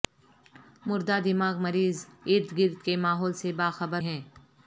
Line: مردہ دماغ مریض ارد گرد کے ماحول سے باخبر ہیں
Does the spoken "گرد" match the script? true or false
true